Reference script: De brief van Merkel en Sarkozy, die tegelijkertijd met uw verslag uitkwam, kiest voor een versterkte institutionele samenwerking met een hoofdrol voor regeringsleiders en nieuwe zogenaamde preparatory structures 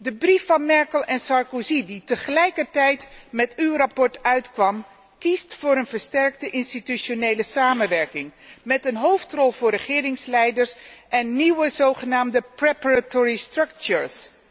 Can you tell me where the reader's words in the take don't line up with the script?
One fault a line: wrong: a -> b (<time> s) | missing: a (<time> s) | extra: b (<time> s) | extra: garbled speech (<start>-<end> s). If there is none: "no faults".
no faults